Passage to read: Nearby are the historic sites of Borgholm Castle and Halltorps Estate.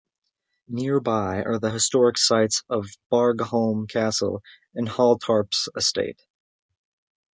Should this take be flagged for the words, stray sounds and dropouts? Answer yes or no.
no